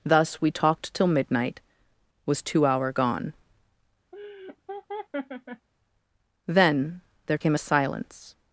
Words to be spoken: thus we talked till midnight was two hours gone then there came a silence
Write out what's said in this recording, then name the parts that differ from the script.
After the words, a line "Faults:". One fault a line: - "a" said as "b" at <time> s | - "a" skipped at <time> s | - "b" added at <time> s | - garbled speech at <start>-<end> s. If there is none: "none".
thus we talked till midnight was two hour gone then there came a silence
Faults:
- "hours" said as "hour" at 2.6 s